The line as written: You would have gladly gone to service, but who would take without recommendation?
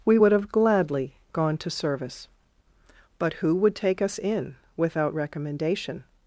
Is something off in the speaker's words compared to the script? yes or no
yes